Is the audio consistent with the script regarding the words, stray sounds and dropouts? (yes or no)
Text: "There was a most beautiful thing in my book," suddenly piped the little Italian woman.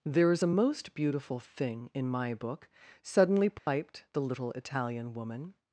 no